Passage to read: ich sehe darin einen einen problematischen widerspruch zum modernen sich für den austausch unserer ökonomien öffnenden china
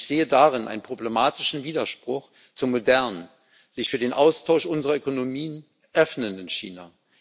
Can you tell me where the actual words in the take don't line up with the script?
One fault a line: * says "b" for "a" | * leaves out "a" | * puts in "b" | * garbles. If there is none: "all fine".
* leaves out "einen"